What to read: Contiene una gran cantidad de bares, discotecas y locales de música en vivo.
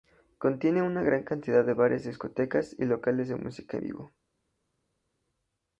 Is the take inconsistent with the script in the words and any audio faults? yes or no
yes